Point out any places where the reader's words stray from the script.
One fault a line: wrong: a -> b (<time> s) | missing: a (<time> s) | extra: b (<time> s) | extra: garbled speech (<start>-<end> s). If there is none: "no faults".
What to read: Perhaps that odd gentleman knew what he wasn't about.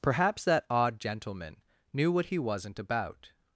no faults